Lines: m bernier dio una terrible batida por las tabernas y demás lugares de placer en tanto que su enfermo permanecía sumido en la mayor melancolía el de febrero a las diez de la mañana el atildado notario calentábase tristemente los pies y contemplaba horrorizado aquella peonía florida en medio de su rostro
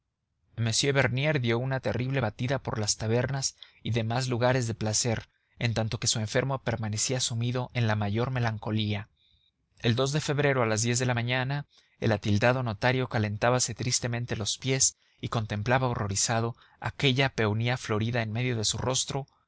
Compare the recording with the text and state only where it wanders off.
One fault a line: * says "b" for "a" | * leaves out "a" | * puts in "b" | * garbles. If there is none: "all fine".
all fine